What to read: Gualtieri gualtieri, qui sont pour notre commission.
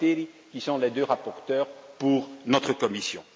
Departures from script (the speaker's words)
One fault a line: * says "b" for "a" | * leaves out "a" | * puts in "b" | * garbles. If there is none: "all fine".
* leaves out "gualtieri"
* puts in "les deux rapporteurs"